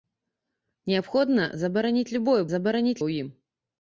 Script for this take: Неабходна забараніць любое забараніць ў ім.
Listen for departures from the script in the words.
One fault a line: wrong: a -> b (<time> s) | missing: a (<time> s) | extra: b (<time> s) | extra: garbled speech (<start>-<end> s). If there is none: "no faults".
no faults